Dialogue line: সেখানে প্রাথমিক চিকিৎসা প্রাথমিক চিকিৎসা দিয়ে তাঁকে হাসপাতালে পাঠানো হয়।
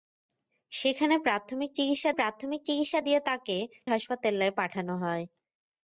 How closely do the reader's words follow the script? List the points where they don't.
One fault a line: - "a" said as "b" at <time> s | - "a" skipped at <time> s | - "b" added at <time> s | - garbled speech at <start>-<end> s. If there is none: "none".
none